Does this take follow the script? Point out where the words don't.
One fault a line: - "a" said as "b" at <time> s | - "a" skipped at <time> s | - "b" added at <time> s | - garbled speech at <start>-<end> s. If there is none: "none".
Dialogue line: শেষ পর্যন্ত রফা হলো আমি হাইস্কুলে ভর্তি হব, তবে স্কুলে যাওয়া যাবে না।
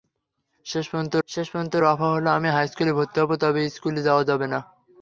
- "শেষ পর্যন্ত" added at 1.3 s